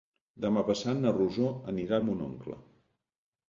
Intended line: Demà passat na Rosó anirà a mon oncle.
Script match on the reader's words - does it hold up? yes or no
yes